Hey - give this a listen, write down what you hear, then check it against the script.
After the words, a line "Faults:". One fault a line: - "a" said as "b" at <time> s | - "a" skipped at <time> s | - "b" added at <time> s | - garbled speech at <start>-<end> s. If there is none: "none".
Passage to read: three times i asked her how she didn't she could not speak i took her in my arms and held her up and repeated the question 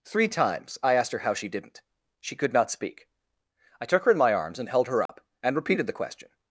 three times i asked her how she didn't she could not speak i took her in my arms and held her up and repeated the question
Faults:
none